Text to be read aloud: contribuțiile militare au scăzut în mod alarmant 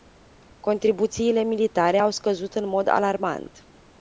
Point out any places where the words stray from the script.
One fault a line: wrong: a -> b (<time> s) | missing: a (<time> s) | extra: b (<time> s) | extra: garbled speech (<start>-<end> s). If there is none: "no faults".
no faults